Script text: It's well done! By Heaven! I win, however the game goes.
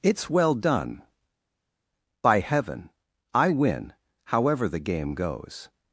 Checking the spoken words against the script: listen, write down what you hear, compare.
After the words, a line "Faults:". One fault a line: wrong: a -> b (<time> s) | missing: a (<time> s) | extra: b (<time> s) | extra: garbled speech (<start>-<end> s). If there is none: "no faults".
It's well done! By Heaven! I win, however the game goes.
Faults:
no faults